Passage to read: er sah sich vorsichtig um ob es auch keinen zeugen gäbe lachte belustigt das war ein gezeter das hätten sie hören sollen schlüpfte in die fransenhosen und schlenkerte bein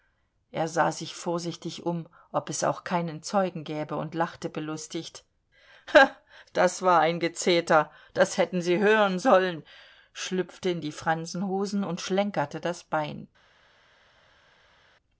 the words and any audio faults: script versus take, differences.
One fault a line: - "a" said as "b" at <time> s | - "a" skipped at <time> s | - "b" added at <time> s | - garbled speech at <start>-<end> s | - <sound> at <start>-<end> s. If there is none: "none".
- "und" added at 4.0 s
- "das" added at 12.6 s